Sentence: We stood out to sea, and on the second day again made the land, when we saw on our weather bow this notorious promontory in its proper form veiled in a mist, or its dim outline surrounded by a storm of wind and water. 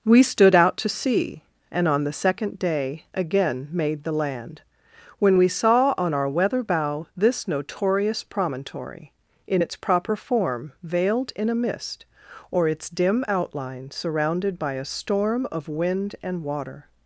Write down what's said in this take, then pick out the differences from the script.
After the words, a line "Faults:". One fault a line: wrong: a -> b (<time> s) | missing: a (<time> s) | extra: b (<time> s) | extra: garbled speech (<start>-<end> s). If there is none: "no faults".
We stood out to sea, and on the second day again made the land, when we saw on our weather bow this notorious promontory in its proper form veiled in a mist, or its dim outline surrounded by a storm of wind and water.
Faults:
no faults